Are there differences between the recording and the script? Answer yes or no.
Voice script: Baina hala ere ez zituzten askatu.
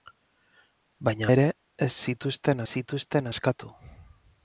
yes